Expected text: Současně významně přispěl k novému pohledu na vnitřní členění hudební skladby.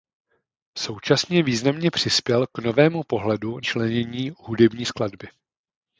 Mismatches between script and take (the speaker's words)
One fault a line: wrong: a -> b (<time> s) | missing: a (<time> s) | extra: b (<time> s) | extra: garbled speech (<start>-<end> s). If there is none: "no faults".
missing: na vnitřní (3.6 s)